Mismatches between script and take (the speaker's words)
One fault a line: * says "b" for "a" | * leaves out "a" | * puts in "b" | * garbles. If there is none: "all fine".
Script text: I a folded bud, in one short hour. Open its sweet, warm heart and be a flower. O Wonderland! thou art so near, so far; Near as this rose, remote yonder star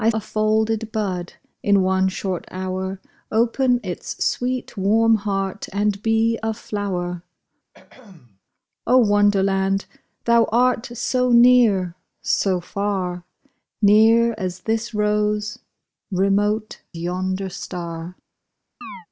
all fine